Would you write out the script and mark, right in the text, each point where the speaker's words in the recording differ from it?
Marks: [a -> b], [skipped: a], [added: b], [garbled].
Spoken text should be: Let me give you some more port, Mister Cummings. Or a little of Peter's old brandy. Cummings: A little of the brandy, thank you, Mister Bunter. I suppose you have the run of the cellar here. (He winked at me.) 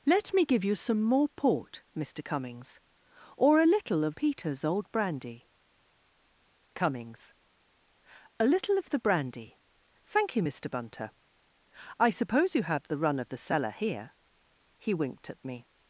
Let me give you some more port, Mister Cummings. Or a little of Peter's old brandy. Cummings: A little of the brandy, thank you, Mister Bunter. I suppose you have the run of the cellar here. (He winked at me.)